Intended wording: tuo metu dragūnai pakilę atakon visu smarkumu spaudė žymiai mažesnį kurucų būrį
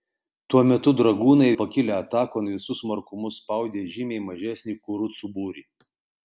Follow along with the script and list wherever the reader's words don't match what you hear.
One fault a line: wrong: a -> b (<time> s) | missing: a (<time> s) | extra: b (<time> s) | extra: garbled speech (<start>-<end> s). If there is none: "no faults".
no faults